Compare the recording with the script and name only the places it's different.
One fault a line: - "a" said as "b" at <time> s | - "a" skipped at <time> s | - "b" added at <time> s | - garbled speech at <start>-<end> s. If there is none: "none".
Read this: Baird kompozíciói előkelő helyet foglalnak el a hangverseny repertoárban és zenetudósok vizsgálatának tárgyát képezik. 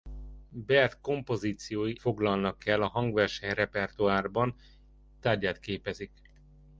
- "előkelő helyet" skipped at 1.9 s
- "és zenetudósok vizsgálatának" skipped at 4.6 s